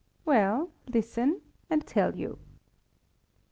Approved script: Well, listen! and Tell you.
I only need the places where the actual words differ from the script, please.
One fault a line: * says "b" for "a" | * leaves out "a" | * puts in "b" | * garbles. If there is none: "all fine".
all fine